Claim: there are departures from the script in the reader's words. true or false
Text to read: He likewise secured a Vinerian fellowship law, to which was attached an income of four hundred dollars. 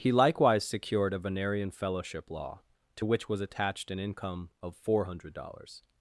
false